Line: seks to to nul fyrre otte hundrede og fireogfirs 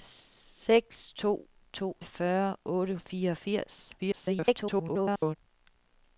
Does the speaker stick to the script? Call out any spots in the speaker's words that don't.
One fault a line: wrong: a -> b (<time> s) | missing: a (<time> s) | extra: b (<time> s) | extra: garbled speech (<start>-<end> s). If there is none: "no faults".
missing: nul (1.9 s)
missing: hundrede (3.0 s)
extra: garbled speech (4.0-5.4 s)